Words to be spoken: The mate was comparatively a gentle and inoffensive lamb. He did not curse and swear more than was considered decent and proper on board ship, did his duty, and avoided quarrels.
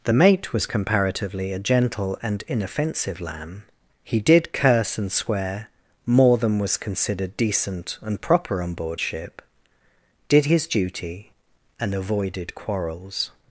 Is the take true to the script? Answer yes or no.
no